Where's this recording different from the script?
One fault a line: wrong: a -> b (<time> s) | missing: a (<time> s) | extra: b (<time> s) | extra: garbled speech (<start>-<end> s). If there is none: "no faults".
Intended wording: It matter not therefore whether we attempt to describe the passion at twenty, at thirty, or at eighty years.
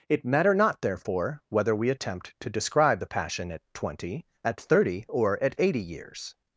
no faults